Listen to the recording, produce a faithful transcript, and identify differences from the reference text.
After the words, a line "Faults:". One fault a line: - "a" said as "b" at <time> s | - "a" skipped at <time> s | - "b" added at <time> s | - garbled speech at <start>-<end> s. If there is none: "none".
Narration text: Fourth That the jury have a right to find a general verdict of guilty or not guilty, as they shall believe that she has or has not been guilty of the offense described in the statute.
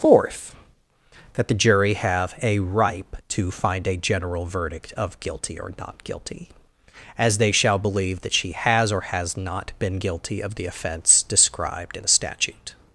Fourth That the jury have a ripe to find a general verdict of guilty or not guilty, as they shall believe that she has or has not been guilty of the offense described in the statute.
Faults:
- "right" said as "ripe" at 2.6 s